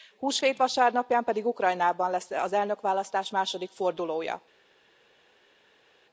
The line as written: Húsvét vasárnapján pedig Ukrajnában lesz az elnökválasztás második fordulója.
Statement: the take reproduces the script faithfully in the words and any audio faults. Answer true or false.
true